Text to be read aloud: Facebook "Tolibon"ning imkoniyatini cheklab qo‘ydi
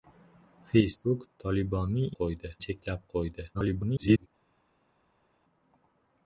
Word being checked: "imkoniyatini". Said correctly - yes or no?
no